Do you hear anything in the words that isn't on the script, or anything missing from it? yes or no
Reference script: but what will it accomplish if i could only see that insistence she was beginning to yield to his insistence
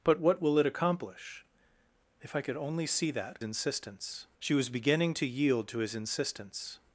no